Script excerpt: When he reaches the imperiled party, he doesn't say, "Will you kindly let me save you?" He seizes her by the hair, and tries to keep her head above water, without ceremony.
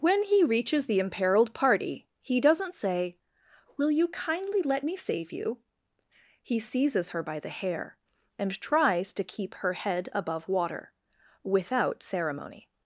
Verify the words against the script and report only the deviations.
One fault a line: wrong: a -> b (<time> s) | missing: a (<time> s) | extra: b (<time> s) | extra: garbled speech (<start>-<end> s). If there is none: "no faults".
no faults